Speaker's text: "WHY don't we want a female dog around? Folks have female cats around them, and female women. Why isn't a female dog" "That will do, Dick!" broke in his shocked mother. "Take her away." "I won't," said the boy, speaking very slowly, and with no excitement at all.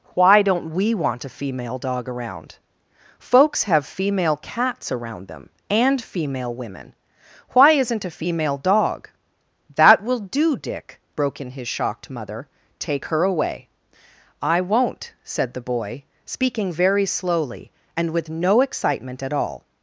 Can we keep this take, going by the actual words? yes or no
yes